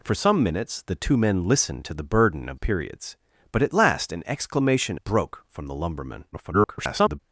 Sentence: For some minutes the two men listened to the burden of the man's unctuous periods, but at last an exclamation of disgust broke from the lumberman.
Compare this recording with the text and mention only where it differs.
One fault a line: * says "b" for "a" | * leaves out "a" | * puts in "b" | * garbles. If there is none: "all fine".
* leaves out "the man's unctuous"
* leaves out "of disgust"
* garbles